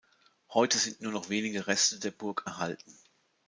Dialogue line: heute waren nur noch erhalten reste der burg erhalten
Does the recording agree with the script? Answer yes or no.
no